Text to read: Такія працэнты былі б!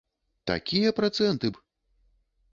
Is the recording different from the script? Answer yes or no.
yes